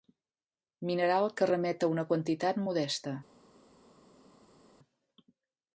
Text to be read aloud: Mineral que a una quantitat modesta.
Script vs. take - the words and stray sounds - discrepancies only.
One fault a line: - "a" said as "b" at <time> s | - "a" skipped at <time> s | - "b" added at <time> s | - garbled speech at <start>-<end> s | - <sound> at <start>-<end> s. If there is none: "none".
- "remet" added at 1.5 s